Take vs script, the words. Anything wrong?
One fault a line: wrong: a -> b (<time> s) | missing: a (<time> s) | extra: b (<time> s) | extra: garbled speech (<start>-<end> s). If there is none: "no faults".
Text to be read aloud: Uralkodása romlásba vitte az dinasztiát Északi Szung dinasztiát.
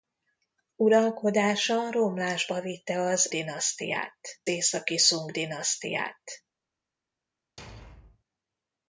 no faults